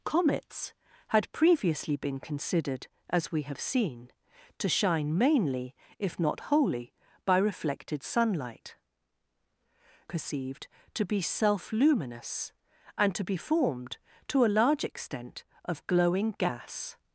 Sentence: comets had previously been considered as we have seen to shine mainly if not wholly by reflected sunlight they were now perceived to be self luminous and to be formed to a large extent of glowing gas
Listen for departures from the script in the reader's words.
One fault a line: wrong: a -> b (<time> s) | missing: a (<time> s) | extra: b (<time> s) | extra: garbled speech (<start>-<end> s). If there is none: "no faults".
missing: they were now (8.8 s)